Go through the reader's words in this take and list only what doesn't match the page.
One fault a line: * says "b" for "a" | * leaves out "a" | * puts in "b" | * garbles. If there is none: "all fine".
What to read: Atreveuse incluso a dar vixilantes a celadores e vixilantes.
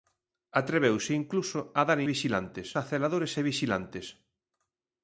all fine